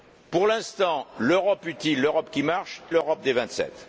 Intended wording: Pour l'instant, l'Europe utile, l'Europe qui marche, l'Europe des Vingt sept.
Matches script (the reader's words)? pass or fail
pass